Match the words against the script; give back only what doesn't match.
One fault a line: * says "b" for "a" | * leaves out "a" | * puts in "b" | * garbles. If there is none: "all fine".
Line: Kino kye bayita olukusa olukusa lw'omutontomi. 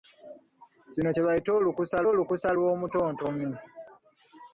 all fine